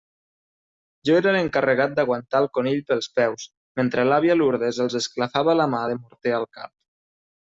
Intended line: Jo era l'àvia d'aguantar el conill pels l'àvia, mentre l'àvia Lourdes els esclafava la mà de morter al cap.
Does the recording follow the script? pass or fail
fail